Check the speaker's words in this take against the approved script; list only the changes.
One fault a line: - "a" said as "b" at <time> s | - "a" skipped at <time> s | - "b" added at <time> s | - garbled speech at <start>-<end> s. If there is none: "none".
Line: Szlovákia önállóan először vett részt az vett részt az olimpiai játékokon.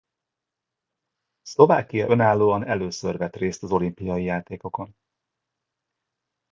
- "vett részt az" skipped at 3.7 s